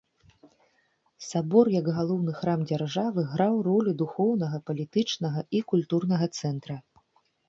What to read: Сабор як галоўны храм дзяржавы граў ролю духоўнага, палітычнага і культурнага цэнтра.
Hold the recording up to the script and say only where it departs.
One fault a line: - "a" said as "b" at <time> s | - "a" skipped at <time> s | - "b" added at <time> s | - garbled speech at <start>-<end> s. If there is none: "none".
none